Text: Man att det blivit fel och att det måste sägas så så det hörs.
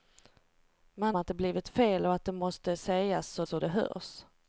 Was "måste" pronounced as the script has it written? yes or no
yes